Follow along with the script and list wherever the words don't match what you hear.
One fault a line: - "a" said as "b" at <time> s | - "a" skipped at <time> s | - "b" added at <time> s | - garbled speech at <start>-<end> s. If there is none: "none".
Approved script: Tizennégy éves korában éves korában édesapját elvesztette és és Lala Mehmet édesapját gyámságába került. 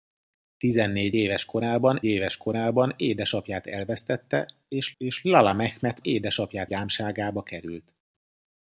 none